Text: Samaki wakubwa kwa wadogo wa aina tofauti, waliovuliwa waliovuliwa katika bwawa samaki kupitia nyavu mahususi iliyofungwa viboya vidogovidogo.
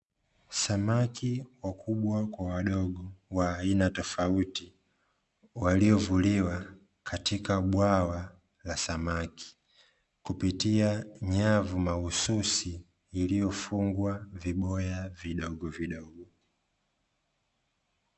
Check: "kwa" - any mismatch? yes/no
no